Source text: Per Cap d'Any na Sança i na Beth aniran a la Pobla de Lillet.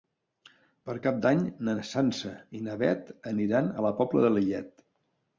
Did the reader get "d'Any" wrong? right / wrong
right